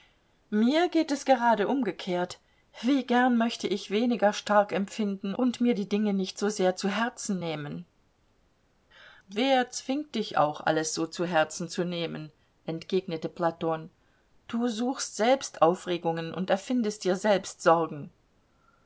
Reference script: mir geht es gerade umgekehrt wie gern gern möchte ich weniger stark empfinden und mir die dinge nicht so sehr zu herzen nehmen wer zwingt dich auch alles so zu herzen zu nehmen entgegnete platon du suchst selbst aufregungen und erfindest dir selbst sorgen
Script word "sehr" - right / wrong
right